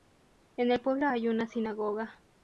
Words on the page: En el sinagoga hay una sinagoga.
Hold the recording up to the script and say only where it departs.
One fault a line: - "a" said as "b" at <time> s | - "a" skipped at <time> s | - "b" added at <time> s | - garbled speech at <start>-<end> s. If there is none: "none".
- "sinagoga" said as "pueblo" at 0.8 s